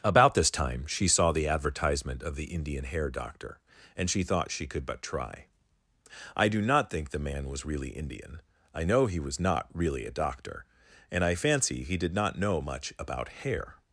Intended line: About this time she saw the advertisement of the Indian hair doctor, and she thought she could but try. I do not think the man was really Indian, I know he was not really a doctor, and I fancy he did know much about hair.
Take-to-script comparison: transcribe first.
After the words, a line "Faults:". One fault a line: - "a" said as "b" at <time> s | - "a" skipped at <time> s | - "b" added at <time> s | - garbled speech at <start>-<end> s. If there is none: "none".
About this time she saw the advertisement of the Indian hair doctor, and she thought she could but try. I do not think the man was really Indian, I know he was not really a doctor, and I fancy he did not know much about hair.
Faults:
- "not" added at 12.1 s